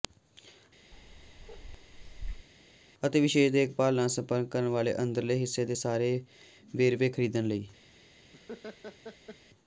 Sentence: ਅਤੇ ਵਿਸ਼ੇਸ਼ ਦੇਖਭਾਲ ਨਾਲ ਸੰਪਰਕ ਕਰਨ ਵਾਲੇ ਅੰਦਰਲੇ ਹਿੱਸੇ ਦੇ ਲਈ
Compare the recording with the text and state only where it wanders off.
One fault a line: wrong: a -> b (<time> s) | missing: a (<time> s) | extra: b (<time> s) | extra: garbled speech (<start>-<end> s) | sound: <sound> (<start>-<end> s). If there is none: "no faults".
sound: bark (0.9-2.5 s)
extra: ਸਾਰੇ ਵੇਰਵੇ ਖਰੀਦਣ (5.8 s)
sound: laugh (8.3-9.4 s)